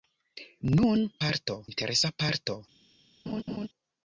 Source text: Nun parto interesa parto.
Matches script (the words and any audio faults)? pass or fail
fail